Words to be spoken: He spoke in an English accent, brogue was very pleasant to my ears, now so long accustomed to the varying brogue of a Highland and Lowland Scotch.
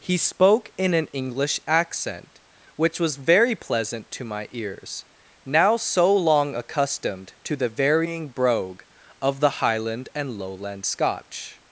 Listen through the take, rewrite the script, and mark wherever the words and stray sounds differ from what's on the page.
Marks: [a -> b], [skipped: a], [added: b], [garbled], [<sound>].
He spoke in an English accent, [brogue -> which] was very pleasant to my ears, now so long accustomed to the varying brogue of [a -> the] Highland and Lowland Scotch.